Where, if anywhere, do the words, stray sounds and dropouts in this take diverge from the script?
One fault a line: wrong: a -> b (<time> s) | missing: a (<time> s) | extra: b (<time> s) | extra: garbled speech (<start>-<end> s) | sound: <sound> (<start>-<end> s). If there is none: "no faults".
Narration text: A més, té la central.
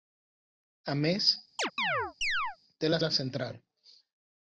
sound: chirp (1.6-2.6 s)
extra: la (3.0 s)